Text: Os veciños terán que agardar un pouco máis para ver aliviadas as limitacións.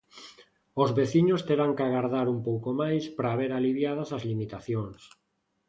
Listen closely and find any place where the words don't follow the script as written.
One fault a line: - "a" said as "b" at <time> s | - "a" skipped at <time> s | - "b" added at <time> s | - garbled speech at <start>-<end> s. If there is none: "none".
none